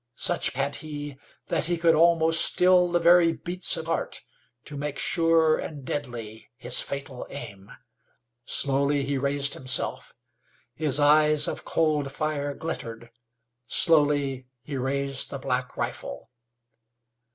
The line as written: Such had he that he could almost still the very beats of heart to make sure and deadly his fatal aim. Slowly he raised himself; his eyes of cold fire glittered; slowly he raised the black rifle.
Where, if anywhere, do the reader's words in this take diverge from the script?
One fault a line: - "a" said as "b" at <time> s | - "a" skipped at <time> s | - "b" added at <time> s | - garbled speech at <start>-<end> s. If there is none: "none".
none